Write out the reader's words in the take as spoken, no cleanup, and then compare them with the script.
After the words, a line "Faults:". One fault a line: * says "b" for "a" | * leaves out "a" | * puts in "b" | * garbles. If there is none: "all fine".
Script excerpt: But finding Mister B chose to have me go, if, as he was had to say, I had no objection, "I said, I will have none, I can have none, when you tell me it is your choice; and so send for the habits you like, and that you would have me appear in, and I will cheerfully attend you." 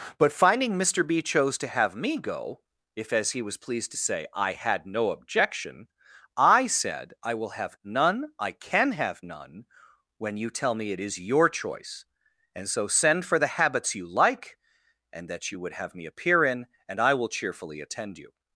But finding Mister B chose to have me go, if, as he was pleased to say, I had no objection, "I said, I will have none, I can have none, when you tell me it is your choice; and so send for the habits you like, and that you would have me appear in, and I will cheerfully attend you."
Faults:
* says "pleased" for "had"